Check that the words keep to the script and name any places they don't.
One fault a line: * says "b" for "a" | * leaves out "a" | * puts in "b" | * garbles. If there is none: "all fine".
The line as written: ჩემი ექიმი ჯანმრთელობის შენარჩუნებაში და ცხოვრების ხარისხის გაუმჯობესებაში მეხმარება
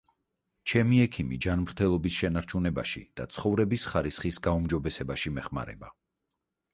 all fine